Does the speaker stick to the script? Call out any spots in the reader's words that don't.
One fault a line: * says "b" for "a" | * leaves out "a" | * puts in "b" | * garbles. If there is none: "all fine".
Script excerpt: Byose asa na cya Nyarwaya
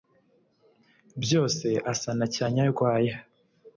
all fine